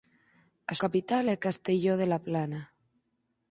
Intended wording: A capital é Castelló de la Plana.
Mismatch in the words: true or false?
false